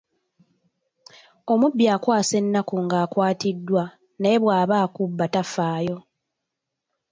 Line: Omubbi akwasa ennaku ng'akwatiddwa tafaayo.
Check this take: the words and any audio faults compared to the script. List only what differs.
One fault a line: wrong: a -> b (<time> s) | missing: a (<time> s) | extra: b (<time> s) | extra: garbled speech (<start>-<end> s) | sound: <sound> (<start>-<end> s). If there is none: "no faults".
extra: naye bwaba akubba (4.2 s)